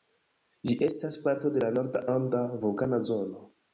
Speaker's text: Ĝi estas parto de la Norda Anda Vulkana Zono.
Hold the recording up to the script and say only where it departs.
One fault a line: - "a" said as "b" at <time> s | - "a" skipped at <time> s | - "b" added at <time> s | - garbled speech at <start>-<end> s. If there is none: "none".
none